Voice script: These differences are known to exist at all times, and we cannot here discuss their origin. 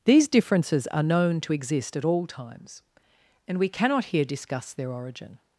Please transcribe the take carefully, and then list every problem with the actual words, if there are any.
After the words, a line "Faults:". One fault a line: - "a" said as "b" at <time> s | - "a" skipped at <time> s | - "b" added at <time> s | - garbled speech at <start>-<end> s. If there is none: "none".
These differences are known to exist at all times, and we cannot here discuss their origin.
Faults:
none